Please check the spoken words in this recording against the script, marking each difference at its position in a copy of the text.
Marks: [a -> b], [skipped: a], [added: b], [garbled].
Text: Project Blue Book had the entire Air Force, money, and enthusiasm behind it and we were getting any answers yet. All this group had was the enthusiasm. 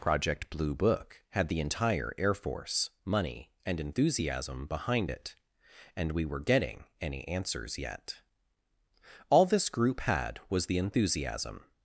Project Blue Book had the entire Air Force, money, and enthusiasm behind it and we were getting any answers yet. All this group had was the enthusiasm.